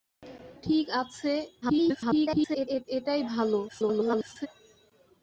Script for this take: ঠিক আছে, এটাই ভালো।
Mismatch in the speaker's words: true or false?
true